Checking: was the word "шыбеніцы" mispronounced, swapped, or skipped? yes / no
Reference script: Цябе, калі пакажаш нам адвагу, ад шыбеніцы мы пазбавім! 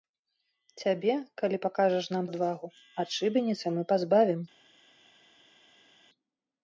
no